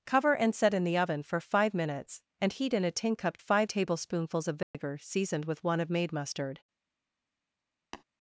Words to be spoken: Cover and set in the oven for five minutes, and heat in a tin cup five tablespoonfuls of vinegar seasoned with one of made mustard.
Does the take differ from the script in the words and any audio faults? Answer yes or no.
yes